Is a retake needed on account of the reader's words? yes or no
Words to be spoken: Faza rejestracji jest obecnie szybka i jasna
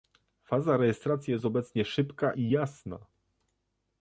no